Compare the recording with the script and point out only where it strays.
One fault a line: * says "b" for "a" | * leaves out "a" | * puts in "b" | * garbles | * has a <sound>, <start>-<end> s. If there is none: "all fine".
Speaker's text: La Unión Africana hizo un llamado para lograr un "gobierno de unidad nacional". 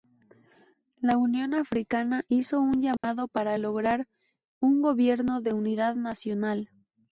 * has a dropout, 3.0-3.0 s